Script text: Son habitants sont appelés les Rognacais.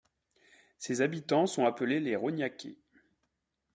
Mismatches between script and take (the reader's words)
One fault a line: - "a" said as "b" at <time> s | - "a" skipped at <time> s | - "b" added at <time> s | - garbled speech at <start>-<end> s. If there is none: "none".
- "Son" said as "Ses" at 0.8 s